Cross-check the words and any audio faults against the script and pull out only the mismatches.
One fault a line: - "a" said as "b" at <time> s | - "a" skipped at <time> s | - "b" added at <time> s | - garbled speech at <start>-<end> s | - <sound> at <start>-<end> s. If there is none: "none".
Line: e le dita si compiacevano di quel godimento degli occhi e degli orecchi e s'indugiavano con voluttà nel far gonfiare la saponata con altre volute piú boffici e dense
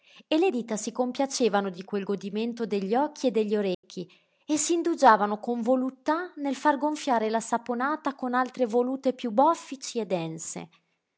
- dropout at 3.7-3.8 s